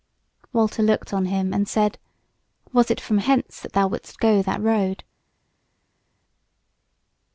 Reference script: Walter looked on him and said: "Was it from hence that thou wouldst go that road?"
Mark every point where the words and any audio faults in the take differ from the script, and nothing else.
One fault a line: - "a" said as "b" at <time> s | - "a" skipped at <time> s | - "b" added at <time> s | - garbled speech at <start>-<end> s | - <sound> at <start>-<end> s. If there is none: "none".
none